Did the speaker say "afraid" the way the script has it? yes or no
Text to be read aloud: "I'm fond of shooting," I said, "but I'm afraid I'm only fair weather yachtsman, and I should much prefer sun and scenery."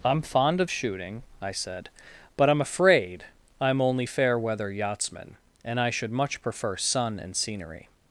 yes